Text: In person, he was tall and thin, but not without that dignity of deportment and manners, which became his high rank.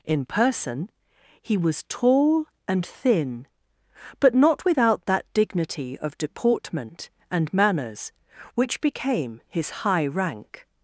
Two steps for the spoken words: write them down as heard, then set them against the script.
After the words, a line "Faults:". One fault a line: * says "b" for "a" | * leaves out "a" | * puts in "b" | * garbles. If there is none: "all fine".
In person, he was tall and thin, but not without that dignity of deportment and manners, which became his high rank.
Faults:
all fine